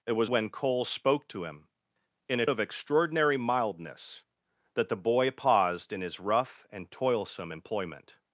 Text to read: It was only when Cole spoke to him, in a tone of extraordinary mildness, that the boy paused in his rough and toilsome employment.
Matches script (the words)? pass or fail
fail